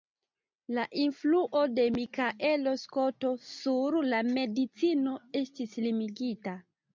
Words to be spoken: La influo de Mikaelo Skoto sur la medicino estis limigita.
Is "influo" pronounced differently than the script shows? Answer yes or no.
no